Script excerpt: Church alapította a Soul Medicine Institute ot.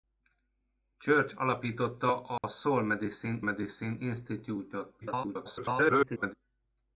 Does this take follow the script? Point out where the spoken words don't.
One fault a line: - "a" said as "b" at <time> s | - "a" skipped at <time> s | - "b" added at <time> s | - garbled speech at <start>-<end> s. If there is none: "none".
- "Medicine" added at 3.4 s
- garbled speech at 5.0-6.3 s